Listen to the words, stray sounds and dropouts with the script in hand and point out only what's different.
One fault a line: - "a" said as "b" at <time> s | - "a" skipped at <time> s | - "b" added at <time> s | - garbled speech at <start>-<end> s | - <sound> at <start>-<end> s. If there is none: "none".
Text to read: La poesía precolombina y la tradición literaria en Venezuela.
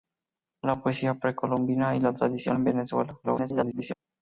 - "literaria" skipped at 2.6 s
- garbled speech at 3.2-3.9 s